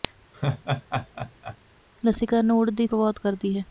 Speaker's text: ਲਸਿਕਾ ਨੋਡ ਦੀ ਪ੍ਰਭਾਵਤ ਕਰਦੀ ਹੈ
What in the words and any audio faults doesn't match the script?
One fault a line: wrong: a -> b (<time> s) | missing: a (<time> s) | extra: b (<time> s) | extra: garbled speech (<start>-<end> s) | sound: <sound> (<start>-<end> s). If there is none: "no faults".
sound: laugh (0.3-1.6 s)